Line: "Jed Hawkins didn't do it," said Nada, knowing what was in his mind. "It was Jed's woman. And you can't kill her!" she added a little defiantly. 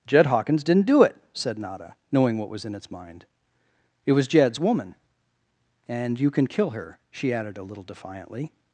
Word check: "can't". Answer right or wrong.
wrong